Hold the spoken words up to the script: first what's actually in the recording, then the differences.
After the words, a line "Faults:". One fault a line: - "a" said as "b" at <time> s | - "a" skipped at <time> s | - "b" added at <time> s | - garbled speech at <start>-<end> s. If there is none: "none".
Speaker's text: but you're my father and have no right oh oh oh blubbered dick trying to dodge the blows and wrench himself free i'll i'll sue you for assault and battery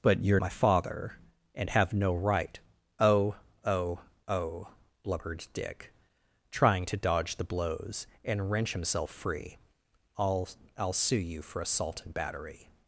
but you're my father and have no right oh oh oh blubbered dick trying to dodge the blows and wrench himself free i'll i'll sue you for assault and battery
Faults:
none